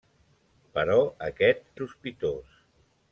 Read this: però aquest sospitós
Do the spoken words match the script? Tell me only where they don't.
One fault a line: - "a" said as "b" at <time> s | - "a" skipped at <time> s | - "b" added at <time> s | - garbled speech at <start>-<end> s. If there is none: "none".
none